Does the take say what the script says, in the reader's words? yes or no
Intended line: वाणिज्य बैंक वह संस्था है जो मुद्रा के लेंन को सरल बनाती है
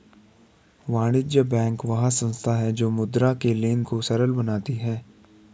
yes